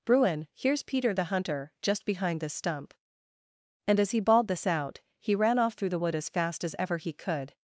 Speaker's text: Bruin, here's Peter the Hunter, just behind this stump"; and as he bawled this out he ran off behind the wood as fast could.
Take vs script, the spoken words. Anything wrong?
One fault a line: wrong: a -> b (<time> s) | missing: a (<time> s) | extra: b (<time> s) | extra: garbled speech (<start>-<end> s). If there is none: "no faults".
wrong: behind -> through (5.7 s)
extra: as ever he (6.6 s)